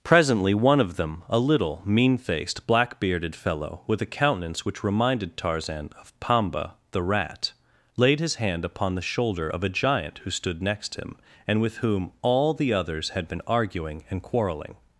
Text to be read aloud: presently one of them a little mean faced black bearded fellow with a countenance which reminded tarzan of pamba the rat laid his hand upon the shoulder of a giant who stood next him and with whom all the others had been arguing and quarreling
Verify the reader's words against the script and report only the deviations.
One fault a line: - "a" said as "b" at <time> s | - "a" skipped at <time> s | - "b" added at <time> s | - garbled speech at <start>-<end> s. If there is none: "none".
none